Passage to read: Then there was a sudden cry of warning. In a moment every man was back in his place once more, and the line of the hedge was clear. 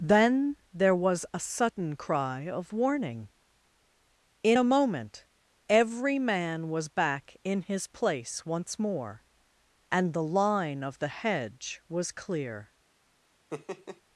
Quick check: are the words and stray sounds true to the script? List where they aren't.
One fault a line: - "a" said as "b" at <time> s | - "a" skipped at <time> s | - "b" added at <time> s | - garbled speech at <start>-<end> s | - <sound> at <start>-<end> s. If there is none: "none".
- laugh at 13.5-14.0 s